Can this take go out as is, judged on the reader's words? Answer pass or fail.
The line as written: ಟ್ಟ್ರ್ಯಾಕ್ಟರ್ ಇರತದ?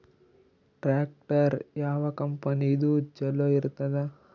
fail